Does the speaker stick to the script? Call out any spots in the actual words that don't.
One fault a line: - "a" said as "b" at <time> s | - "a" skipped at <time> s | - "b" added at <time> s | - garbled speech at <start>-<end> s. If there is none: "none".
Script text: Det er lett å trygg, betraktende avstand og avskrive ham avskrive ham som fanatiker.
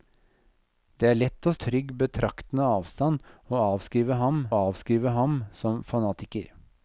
none